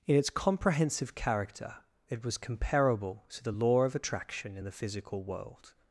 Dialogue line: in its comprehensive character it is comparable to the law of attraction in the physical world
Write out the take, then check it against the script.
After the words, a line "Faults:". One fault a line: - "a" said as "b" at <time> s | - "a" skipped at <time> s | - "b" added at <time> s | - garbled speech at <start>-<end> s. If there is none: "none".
in its comprehensive character it was comparable to the law of attraction in the physical world
Faults:
- "is" said as "was" at 2.2 s